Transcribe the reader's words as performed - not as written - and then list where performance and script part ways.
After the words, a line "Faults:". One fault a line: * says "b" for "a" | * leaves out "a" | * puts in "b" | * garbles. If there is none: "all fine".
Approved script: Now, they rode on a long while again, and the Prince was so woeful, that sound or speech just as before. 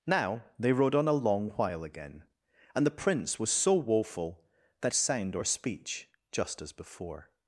Now, they rode on a long while again, and the Prince was so woeful, that sound or speech just as before.
Faults:
all fine